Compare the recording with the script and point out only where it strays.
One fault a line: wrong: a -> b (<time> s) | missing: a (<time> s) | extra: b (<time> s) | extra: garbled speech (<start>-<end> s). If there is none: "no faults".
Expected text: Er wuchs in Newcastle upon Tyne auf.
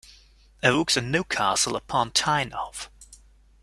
no faults